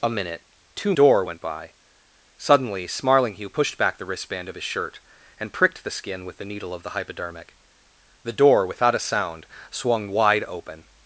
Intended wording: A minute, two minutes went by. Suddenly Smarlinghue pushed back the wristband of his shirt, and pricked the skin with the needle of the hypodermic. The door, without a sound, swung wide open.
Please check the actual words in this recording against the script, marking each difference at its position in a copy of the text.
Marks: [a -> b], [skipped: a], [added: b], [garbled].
A minute, two [minutes -> door] went by. Suddenly Smarlinghue pushed back the wristband of his shirt, and pricked the skin with the needle of the hypodermic. The door, without a sound, swung wide open.